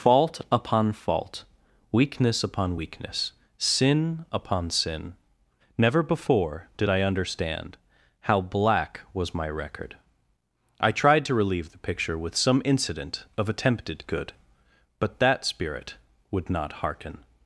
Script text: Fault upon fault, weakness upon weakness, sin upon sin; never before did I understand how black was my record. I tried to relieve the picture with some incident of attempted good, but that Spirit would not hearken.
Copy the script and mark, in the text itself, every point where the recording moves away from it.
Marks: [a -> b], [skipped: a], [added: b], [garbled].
Fault upon fault, weakness upon weakness, sin upon sin; never before did I understand how black was my record. I tried to relieve the picture with some incident of attempted good, but that Spirit would not hearken.